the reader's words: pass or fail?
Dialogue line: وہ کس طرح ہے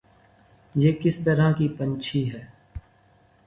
fail